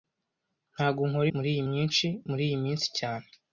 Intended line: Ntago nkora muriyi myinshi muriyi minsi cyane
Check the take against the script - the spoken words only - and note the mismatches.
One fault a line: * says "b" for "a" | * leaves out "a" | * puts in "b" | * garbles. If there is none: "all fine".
all fine